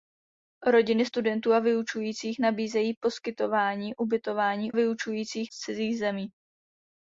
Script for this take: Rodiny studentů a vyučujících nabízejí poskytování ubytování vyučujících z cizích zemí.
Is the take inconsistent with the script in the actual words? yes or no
no